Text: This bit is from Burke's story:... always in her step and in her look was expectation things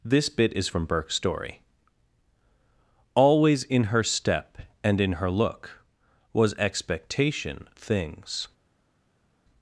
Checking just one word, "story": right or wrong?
right